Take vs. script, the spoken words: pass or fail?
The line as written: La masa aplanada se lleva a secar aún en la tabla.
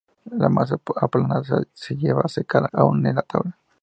pass